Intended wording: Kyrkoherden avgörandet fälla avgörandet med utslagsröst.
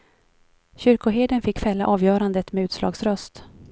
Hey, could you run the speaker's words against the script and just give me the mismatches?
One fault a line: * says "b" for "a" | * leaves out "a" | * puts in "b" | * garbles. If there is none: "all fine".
* says "fick" for "avgörandet"